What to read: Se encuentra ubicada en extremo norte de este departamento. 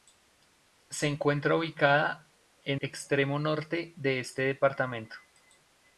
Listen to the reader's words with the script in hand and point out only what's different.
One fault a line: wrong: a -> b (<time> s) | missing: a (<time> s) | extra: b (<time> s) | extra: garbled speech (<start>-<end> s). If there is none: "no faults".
no faults